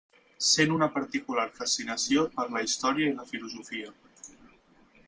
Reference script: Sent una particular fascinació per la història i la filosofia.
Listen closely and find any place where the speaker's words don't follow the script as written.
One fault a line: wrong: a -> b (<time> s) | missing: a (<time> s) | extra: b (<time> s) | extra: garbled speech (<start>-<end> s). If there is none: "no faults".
no faults